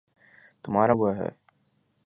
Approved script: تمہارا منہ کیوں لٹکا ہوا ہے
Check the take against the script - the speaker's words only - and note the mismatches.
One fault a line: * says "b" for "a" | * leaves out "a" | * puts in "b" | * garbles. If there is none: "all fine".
* leaves out "منہ کیوں لٹکا"